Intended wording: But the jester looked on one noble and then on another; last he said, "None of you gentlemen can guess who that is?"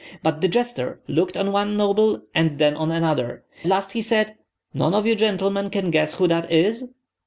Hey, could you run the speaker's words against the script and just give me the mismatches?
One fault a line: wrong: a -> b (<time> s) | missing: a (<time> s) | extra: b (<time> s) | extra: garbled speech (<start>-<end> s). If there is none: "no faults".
no faults